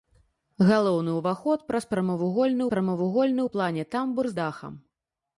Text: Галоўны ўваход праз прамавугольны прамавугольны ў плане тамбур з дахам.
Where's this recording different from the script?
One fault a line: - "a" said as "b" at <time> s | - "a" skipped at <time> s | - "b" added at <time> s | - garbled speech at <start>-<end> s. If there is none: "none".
none